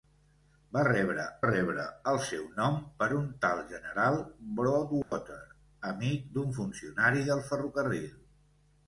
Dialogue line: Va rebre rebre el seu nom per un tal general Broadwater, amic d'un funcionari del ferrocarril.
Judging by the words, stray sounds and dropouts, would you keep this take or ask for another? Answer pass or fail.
fail